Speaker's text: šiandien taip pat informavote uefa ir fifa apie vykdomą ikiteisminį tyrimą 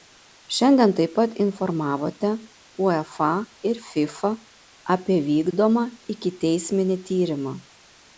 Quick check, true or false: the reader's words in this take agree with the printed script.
true